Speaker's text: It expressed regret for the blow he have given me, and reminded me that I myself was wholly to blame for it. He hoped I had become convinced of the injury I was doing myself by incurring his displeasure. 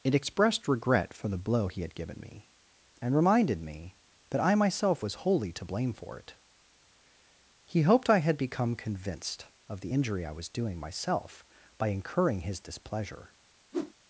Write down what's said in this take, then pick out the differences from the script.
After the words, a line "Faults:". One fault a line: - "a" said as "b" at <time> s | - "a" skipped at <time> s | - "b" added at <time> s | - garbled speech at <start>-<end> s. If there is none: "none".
It expressed regret for the blow he had given me, and reminded me that I myself was wholly to blame for it. He hoped I had become convinced of the injury I was doing myself by incurring his displeasure.
Faults:
- "have" said as "had" at 1.8 s